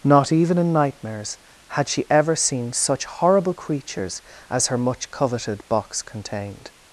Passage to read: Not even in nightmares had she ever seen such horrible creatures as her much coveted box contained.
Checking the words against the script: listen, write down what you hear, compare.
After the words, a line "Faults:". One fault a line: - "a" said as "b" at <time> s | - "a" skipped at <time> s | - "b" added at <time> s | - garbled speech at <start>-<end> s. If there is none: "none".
Not even in nightmares had she ever seen such horrible creatures as her much coveted box contained.
Faults:
none